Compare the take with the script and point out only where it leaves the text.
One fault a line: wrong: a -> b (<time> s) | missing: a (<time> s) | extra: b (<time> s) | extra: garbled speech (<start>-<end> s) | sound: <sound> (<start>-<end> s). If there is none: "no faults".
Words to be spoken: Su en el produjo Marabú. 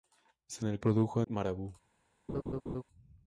sound: laugh (2.3-2.8 s)